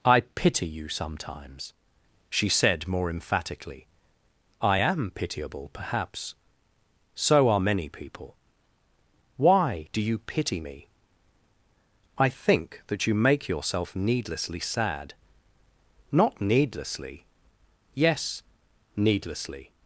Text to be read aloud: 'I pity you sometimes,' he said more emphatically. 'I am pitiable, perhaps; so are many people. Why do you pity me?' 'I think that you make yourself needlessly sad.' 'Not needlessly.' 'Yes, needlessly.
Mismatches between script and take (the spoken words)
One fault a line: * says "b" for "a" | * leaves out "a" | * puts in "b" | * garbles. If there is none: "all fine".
* says "she" for "he"